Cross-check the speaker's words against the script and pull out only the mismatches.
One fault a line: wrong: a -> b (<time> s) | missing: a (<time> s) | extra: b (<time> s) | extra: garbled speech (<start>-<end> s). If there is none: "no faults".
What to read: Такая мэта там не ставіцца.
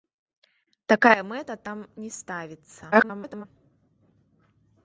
extra: garbled speech (2.9-3.4 s)